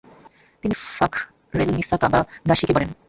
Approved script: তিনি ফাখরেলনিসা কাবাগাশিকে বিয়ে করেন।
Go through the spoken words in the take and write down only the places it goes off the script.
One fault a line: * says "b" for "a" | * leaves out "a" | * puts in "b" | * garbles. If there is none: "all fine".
* leaves out "বিয়ে"